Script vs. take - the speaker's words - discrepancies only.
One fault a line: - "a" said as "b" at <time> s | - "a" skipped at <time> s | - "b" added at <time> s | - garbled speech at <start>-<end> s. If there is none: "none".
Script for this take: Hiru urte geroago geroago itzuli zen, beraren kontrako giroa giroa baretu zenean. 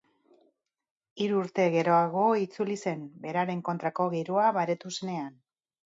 - "geroago" skipped at 2.2 s
- "giroa" skipped at 4.5 s